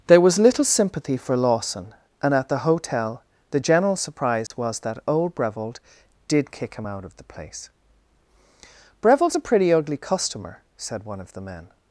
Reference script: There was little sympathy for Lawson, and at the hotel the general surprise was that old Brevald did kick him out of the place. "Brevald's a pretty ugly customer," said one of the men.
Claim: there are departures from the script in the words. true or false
false